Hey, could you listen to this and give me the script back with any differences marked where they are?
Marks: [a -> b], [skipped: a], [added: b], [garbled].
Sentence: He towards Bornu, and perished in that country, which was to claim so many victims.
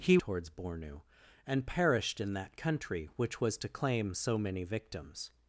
He towards Bornu, and perished in that country, which was to claim so many victims.